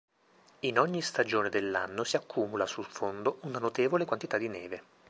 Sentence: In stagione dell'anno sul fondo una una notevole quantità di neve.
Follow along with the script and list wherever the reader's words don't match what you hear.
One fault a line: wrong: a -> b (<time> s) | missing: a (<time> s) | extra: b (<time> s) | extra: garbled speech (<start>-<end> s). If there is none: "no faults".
extra: ogni (0.8 s)
extra: si accumula (2.0 s)
missing: una (3.6 s)